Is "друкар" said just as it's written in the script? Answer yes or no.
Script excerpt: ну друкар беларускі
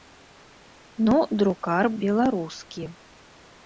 yes